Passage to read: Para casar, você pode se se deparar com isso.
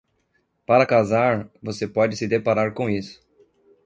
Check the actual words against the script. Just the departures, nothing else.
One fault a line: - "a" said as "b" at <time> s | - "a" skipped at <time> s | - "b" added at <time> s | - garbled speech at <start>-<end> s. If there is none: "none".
- "se" skipped at 2.3 s